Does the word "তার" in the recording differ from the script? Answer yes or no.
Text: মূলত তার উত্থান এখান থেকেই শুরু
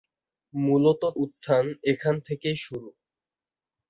yes